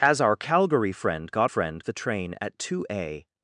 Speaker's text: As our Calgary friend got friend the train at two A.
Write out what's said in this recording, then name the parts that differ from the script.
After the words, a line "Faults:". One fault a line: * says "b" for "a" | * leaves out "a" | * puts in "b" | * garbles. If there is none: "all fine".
As our Calgary friend got friend the train at two A.
Faults:
all fine